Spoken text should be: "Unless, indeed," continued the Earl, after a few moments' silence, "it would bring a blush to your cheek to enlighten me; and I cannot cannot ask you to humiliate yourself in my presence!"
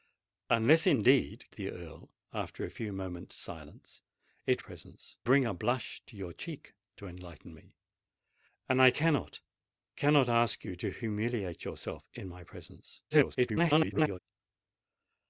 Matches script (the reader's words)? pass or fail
fail